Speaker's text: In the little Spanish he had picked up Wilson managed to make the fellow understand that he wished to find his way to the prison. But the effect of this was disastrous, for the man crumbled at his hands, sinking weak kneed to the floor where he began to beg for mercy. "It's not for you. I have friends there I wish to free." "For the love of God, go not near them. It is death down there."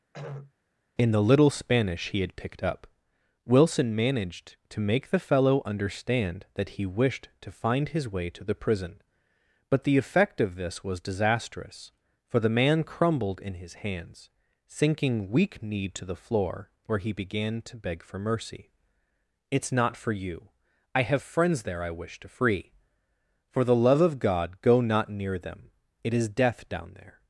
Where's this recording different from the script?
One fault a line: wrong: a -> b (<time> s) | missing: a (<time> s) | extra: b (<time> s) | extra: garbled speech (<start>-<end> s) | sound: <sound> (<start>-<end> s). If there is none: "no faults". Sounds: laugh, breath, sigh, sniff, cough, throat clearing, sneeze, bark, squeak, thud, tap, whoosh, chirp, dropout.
sound: throat clearing (0.1-0.5 s)
wrong: at -> in (13.4 s)